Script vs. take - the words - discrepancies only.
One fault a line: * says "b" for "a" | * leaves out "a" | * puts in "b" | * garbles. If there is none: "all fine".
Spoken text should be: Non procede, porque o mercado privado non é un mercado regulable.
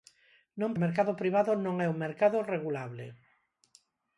* leaves out "procede porque"